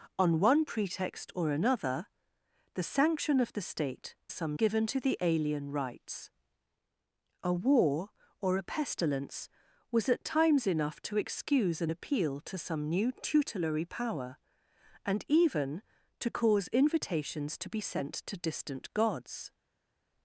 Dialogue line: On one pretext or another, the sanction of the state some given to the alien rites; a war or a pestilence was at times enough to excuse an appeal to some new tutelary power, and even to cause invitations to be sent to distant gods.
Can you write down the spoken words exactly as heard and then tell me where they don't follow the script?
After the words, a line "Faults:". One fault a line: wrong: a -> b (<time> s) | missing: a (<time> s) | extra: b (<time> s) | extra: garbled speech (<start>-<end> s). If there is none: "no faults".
On one pretext or another, the sanction of the state some given to the alien rites; a war or a pestilence was at times enough to excuse an appeal to some new tutelary power, and even to cause invitations to be sent to distant gods.
Faults:
no faults